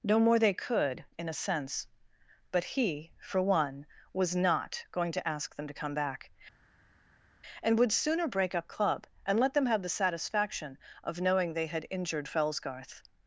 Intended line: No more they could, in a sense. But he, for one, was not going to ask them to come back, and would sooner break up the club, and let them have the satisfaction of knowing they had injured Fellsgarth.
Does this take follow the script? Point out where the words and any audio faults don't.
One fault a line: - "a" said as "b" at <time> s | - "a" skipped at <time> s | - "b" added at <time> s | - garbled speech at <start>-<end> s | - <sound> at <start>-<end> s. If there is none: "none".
- "the" skipped at 8.7 s